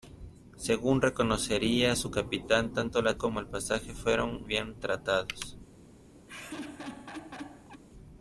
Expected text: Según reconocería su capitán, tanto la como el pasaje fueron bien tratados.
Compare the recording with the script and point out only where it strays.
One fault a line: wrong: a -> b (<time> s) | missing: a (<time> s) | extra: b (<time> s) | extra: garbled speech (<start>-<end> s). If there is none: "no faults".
no faults